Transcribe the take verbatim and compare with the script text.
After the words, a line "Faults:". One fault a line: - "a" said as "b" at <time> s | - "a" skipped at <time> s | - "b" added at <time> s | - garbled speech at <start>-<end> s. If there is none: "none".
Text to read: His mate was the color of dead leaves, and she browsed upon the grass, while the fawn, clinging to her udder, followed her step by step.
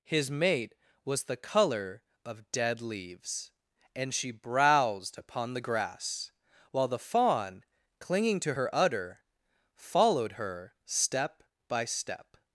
His mate was the color of dead leaves, and she browsed upon the grass, while the fawn, clinging to her udder, followed her step by step.
Faults:
none